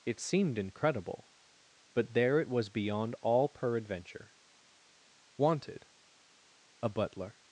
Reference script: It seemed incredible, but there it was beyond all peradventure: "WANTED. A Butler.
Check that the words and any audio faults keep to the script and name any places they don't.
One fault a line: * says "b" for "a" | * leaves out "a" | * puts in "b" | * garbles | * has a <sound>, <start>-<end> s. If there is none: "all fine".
all fine